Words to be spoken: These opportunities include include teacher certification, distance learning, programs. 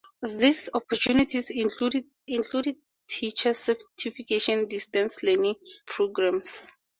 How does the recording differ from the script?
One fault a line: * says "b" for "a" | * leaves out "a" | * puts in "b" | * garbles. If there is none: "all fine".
all fine